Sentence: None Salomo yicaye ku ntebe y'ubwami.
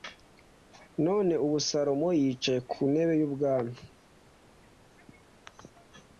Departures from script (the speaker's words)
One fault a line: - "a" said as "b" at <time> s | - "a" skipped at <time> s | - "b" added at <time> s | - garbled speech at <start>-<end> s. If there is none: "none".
- "ubu" added at 1.4 s